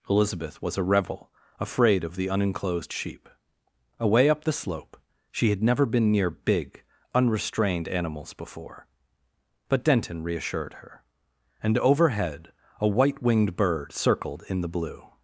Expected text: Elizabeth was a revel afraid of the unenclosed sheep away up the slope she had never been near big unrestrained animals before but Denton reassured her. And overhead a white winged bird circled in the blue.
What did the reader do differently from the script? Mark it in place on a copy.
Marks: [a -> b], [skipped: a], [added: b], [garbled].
Elizabeth was a revel afraid of the unenclosed sheep away up the slope she had never been near big unrestrained animals before but Denton reassured her. And overhead a white winged bird circled in the blue.